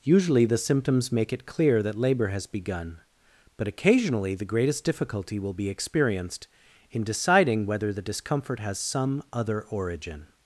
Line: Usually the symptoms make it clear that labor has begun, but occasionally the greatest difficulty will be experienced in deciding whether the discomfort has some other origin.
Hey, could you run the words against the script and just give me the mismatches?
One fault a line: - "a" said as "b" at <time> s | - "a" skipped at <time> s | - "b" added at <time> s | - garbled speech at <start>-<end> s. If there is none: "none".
none